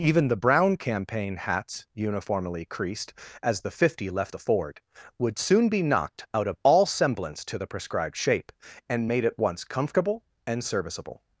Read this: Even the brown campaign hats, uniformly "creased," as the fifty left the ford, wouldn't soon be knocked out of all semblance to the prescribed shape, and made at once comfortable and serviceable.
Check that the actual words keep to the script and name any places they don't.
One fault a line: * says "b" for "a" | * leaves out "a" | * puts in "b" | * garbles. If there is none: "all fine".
* says "would" for "wouldn't"